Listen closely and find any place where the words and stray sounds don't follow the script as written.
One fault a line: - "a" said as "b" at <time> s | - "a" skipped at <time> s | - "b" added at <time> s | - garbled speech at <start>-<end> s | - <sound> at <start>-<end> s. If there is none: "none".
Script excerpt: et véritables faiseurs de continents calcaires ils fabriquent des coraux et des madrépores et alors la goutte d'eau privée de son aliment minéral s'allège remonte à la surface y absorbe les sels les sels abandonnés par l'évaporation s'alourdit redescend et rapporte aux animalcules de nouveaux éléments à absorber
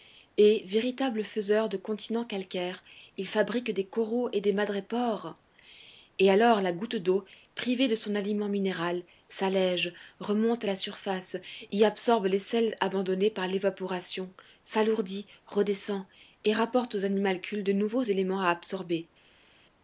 - "les sels" skipped at 12.8 s